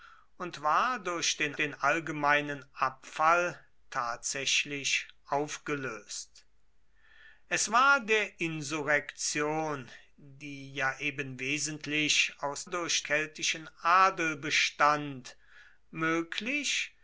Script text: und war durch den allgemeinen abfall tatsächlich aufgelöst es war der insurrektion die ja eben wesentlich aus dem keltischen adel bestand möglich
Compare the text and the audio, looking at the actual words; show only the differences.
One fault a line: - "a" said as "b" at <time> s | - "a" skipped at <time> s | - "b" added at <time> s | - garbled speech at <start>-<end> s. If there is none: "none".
- "den" added at 1.6 s
- "dem" said as "durch" at 12.7 s